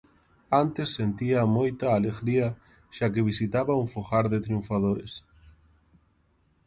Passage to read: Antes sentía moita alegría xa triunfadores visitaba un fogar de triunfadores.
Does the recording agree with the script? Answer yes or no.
no